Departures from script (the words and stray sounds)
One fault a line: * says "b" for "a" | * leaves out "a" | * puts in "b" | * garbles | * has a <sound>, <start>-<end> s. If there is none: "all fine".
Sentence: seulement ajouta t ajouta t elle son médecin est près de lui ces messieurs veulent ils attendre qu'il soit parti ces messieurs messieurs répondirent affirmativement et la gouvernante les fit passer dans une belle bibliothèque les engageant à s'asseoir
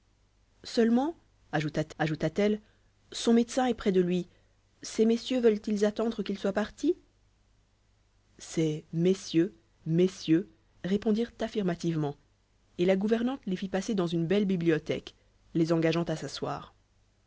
all fine